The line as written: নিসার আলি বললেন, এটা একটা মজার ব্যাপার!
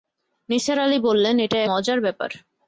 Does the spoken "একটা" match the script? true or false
false